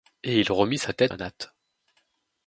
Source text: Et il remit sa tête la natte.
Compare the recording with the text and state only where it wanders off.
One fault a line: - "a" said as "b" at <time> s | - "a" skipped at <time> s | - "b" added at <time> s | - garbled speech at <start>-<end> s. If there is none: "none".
none